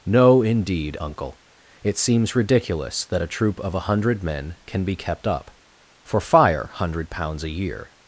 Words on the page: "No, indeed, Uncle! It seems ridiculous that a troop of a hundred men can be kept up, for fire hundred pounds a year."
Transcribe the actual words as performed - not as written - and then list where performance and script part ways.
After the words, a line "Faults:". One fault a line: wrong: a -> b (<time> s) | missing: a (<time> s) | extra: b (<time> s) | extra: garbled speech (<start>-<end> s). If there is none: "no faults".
"No, indeed, Uncle! It seems ridiculous that a troop of a hundred men can be kept up, for fire hundred pounds a year."
Faults:
no faults